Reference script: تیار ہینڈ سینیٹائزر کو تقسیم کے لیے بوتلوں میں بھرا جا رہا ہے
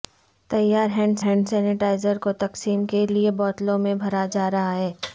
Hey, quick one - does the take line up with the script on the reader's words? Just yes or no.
no